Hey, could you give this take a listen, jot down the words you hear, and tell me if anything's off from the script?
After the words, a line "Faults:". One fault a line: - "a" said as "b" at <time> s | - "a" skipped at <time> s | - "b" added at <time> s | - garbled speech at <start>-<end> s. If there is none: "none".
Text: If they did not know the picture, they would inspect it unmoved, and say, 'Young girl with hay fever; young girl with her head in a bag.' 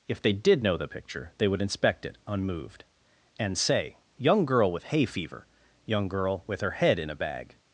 If they did know the picture, they would inspect it unmoved, and say, 'Young girl with hay fever; young girl with her head in a bag.'
Faults:
- "not" skipped at 0.6 s